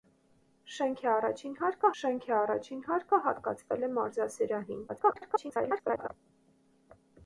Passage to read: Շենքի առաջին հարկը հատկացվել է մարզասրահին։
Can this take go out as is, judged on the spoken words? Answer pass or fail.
fail